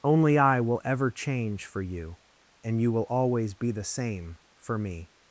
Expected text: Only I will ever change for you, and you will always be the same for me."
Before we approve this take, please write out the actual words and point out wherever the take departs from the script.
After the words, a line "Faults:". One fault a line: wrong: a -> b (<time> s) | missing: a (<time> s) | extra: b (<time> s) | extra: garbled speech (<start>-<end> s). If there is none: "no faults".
Only I will ever change for you, and you will always be the same for me."
Faults:
no faults